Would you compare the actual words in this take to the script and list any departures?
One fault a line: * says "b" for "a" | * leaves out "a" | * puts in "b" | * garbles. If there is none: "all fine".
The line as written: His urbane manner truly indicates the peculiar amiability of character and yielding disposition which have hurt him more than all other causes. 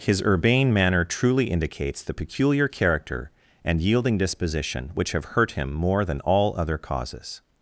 * leaves out "amiability of"